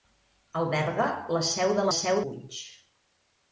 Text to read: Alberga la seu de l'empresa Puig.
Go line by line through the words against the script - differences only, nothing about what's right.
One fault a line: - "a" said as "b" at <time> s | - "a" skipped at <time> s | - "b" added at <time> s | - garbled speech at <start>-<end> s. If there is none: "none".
- "l'empresa" said as "seu" at 2.0 s